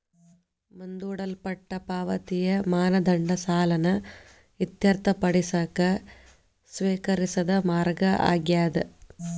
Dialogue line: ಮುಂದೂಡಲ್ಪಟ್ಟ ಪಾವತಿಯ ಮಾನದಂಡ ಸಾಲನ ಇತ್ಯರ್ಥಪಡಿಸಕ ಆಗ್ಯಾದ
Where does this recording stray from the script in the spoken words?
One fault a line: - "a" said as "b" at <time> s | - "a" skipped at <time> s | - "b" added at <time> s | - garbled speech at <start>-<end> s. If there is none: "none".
- "ಸ್ವೇಕರಿಸಿದ ಮಾರ್ಗ" added at 6.7 s